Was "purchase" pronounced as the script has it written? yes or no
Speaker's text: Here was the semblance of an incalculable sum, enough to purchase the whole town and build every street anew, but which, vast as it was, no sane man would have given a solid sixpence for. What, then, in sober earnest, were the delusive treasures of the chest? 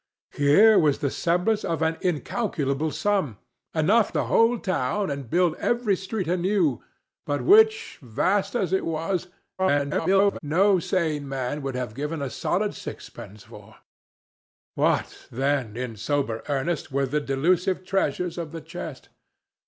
no